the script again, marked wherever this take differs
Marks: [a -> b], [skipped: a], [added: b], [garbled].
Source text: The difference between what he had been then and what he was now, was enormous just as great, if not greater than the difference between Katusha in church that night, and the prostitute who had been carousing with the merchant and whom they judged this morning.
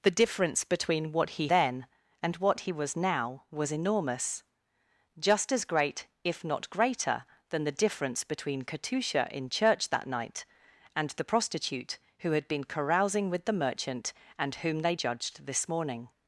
The difference between what he [skipped: had been] then and what he was now, was enormous just as great, if not greater than the difference between Katusha in church that night, and the prostitute who had been carousing with the merchant and whom they judged this morning.